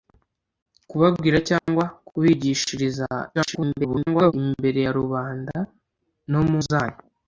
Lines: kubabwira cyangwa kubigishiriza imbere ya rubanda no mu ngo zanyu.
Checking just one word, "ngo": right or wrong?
wrong